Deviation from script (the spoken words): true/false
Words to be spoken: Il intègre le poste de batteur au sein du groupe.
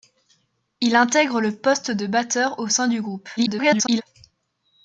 true